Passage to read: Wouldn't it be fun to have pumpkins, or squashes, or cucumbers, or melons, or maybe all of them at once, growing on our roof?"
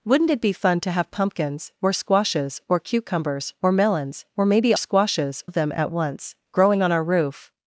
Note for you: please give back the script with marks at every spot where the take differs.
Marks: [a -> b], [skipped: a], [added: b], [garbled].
Wouldn't it be fun to have pumpkins, or squashes, or cucumbers, or melons, or maybe [all -> squashes] of them at once, growing on our roof?"